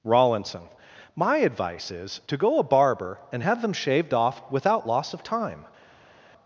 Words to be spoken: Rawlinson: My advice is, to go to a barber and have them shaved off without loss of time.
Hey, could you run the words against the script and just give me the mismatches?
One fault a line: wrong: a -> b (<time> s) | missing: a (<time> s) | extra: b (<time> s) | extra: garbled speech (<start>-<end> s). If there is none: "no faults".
missing: to (2.6 s)